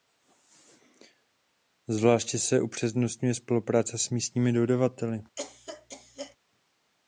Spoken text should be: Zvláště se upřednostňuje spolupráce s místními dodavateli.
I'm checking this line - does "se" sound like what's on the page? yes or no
yes